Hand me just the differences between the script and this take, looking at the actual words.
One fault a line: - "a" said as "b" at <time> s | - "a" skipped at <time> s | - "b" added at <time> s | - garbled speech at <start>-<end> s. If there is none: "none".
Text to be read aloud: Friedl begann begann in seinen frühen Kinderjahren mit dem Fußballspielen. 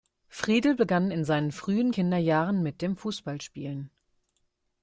- "begann" skipped at 1.1 s